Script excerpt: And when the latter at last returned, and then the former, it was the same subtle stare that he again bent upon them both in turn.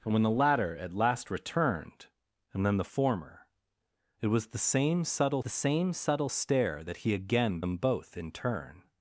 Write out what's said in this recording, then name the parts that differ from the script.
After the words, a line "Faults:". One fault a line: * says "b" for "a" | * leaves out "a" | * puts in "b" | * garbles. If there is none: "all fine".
And when the latter at last returned, and then the former, it was the same subtle the same subtle stare that he again them both in turn.
Faults:
* puts in "the same subtle"
* leaves out "bent upon"